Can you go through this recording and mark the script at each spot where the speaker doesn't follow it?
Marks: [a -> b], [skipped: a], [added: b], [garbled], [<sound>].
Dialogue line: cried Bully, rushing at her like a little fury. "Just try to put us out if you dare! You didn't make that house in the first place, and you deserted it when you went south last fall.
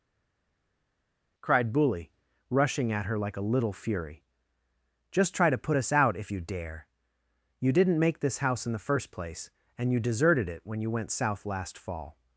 cried Bully, rushing at her like a little fury. "Just try to put us out if you dare! You didn't make [that -> this] house in the first place, and you deserted it when you went south last fall.